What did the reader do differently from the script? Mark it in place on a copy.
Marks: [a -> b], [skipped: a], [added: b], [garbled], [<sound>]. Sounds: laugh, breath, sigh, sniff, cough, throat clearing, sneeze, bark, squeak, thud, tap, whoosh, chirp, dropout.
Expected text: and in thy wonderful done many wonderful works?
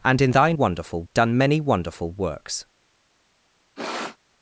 and in thy wonderful done many wonderful works? [sniff]